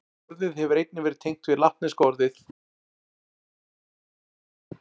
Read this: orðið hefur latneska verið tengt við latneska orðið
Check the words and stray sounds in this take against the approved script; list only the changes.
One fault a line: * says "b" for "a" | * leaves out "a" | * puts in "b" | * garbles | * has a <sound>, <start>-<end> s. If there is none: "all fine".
* says "einnig" for "latneska"